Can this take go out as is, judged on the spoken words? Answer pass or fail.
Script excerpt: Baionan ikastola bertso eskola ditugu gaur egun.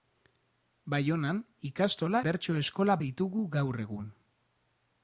pass